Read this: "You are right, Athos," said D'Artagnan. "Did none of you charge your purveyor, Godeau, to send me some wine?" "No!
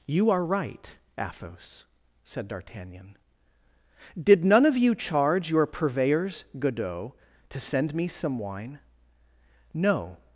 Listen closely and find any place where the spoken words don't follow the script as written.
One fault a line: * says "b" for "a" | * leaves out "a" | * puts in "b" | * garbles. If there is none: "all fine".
* says "purveyors" for "purveyor"